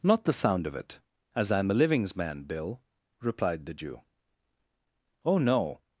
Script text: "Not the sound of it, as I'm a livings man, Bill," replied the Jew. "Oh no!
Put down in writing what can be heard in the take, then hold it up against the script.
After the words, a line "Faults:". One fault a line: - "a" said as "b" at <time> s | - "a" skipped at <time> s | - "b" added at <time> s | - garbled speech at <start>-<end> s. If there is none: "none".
"Not the sound of it, as I'm a livings man, Bill," replied the Jew. "Oh no!
Faults:
none